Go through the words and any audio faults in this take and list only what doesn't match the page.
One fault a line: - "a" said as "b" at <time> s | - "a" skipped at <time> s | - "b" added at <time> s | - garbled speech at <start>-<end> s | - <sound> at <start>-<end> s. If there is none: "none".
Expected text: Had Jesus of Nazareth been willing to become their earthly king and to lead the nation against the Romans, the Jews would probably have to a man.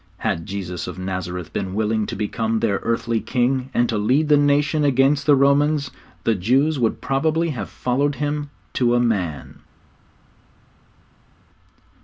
- "followed Him" added at 7.7 s